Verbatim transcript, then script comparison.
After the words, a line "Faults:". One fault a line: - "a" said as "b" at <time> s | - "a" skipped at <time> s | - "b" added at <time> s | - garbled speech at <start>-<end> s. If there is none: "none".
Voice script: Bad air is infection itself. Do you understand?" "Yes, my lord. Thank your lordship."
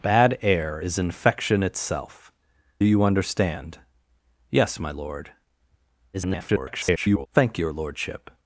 Bad air is infection itself. You understand?" "Yes, my lord. [garbled] Thank your lordship."
Faults:
- "Do" skipped at 2.3 s
- garbled speech at 6.1-7.3 s